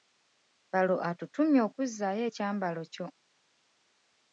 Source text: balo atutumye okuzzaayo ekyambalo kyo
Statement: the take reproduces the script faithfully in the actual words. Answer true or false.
true